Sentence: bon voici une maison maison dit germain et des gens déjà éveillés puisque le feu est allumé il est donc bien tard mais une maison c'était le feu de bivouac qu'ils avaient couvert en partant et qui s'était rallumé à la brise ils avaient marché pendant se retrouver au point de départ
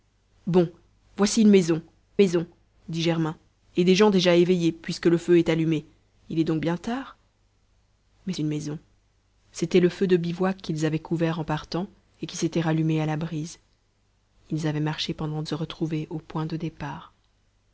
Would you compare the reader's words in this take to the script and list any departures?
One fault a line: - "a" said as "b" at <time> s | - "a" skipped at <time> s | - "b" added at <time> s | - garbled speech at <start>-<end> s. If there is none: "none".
none